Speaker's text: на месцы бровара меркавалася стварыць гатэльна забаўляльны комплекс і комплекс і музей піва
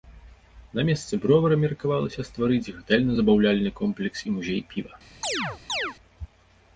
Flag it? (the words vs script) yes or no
yes